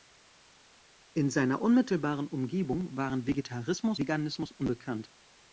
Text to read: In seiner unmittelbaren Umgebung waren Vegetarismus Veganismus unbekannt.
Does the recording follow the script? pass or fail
pass